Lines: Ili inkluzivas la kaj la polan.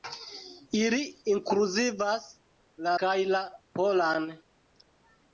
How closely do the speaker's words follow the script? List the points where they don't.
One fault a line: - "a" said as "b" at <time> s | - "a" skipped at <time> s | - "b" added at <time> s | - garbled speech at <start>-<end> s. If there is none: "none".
none